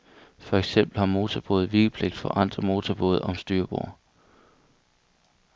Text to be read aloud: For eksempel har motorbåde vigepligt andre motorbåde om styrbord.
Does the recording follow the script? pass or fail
fail